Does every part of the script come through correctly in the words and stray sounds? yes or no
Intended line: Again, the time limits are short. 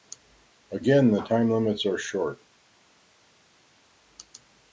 yes